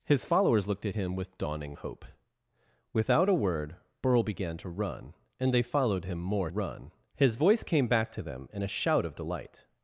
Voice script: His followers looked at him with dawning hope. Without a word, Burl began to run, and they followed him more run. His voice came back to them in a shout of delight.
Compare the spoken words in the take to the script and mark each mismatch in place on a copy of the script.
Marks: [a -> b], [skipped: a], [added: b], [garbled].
His followers looked at him with dawning hope. Without a word, Burl began to run, and they followed him more run. His voice came back to them in a shout of delight.